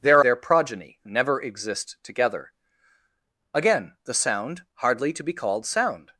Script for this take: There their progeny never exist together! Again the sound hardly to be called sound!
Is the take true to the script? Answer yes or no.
yes